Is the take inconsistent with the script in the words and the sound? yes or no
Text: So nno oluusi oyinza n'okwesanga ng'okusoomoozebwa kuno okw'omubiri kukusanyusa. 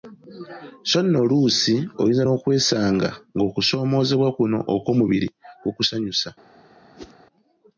yes